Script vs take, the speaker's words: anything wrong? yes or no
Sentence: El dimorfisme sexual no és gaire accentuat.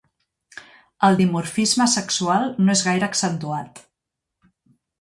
no